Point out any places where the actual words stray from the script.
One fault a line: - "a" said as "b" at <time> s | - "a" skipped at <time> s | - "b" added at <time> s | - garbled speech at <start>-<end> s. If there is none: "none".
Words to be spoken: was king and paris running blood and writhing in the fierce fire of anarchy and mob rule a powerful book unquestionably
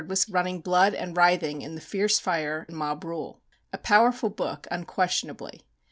- "king and paris" skipped at 0.2 s
- "of anarchy" skipped at 2.7 s